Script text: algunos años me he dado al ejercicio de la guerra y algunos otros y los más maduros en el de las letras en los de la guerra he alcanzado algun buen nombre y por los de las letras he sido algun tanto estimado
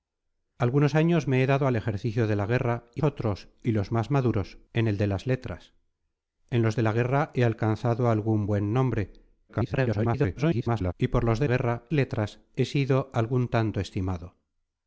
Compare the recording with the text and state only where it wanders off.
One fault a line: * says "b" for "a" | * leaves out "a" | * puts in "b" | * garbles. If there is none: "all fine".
* leaves out "algunos"
* garbles
* says "guerra" for "las"